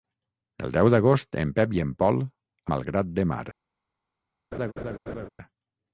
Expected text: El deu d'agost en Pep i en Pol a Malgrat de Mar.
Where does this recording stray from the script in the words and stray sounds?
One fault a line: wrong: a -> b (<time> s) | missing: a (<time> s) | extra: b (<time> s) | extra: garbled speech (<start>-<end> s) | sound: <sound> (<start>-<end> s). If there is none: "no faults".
sound: laugh (4.5-5.3 s)